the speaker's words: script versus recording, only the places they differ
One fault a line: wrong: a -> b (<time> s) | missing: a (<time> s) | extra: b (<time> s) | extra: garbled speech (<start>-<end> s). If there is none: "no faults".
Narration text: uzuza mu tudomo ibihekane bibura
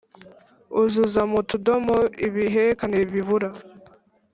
no faults